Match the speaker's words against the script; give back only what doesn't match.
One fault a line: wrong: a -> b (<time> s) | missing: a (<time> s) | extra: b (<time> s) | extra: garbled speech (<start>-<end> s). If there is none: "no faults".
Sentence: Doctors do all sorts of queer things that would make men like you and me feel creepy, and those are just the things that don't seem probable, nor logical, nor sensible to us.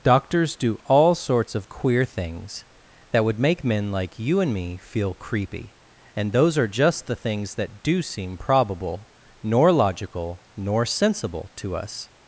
wrong: don't -> do (7.8 s)